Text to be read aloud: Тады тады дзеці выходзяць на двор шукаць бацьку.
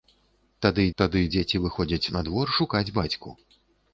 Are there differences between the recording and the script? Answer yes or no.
no